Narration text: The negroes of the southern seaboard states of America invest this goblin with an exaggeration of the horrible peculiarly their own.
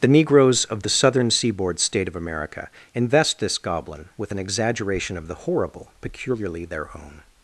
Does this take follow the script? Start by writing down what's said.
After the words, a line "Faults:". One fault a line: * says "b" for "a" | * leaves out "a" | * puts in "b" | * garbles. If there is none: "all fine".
The negroes of the southern seaboard state of America invest this goblin with an exaggeration of the horrible peculiarly their own.
Faults:
* says "state" for "states"